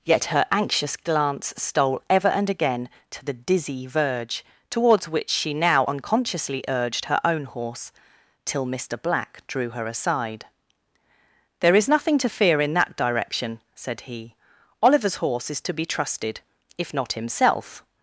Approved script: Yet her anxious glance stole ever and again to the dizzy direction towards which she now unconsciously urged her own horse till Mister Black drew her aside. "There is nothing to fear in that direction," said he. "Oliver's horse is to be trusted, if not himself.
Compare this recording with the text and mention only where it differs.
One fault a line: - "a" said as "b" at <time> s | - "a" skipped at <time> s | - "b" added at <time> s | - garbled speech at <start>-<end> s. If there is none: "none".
- "direction" said as "verge" at 3.9 s